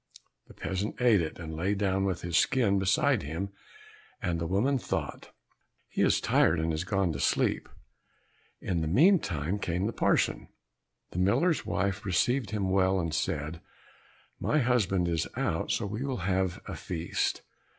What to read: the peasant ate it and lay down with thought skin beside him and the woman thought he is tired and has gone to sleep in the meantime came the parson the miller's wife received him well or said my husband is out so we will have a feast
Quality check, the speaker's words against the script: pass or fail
fail